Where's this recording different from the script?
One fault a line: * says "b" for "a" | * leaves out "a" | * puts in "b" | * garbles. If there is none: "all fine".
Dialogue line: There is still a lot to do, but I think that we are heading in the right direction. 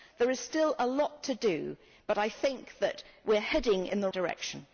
* leaves out "right"